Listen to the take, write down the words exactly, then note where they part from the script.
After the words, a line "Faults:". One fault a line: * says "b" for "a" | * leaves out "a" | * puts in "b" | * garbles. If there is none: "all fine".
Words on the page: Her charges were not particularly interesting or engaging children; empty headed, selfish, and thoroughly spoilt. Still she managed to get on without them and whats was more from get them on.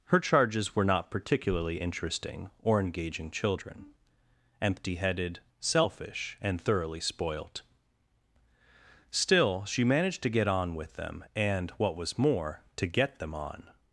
Her charges were not particularly interesting or engaging children; empty headed, selfish, and thoroughly spoilt. Still she managed to get on with them and what was more to get them on.
Faults:
* says "with" for "without"
* says "what" for "whats"
* says "to" for "from"